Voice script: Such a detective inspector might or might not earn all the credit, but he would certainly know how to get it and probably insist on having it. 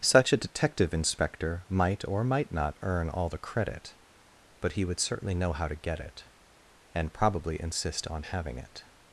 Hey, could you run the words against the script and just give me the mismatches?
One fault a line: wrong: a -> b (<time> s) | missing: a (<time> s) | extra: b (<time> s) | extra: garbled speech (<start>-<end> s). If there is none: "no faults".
no faults